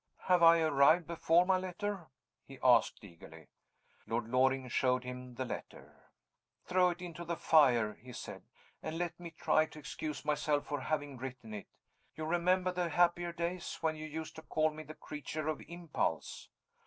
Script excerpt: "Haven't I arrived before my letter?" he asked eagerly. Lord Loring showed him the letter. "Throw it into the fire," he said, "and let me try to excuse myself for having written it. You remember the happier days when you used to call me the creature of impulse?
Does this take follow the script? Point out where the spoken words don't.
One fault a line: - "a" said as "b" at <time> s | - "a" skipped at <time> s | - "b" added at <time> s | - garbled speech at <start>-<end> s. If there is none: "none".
- "Haven't" said as "Have" at 0.2 s